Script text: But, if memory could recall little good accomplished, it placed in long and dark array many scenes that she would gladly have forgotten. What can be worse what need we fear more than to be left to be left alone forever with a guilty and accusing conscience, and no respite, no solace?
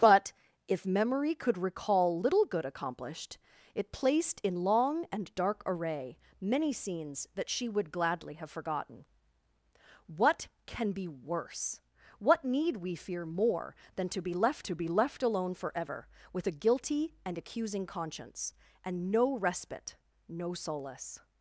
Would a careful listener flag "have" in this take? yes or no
no